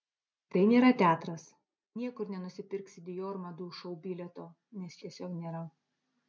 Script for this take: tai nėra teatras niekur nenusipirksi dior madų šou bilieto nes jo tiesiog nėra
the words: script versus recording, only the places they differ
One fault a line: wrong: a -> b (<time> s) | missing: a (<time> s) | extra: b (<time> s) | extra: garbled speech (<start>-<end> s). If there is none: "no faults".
missing: jo (5.0 s)